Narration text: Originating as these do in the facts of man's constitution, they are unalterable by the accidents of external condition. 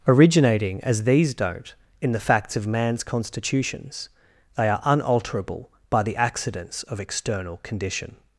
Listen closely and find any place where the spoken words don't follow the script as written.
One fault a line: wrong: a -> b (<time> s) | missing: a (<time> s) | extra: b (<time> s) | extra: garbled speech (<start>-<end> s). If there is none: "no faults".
wrong: do -> don't (1.3 s)
wrong: constitution -> constitutions (3.0 s)